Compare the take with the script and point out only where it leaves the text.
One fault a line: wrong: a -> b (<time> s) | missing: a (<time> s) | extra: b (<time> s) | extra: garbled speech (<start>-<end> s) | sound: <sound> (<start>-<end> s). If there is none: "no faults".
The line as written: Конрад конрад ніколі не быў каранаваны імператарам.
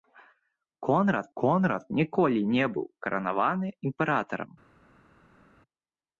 no faults